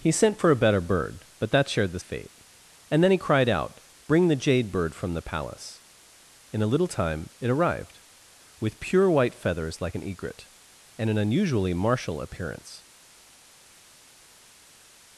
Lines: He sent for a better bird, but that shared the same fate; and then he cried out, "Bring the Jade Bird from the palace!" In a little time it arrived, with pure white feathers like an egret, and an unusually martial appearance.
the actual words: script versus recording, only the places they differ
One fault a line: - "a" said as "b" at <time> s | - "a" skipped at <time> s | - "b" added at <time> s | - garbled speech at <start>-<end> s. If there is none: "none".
- "same" skipped at 2.0 s